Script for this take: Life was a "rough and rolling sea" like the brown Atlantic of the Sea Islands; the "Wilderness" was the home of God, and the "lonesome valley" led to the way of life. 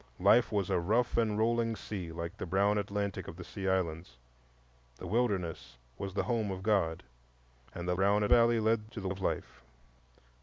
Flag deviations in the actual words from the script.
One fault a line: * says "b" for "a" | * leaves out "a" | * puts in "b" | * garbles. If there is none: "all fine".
* says "brown" for "lonesome"
* leaves out "way"